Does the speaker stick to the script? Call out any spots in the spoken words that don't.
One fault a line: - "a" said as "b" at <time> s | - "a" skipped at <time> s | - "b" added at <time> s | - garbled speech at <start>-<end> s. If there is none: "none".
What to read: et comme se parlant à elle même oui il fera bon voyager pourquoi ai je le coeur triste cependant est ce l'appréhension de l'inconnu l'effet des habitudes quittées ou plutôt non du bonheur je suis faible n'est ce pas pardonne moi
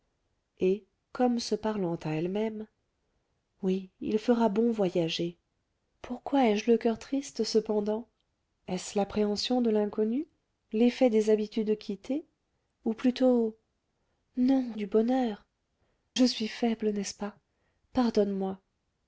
none